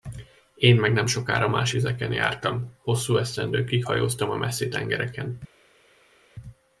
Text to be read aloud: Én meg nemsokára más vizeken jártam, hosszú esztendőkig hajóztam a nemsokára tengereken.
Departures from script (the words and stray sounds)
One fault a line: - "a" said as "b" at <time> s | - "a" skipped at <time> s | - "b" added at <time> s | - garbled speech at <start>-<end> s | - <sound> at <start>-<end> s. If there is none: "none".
- "nemsokára" said as "messzi" at 4.4 s